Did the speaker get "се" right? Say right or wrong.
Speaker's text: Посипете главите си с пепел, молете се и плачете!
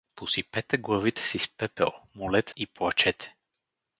wrong